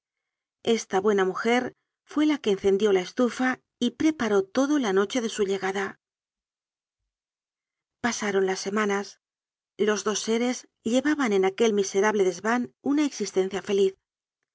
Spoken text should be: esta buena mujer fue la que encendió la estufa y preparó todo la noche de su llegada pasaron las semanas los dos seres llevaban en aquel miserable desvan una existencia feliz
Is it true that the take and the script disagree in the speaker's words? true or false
false